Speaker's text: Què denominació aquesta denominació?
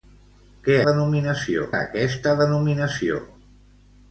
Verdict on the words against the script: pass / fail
pass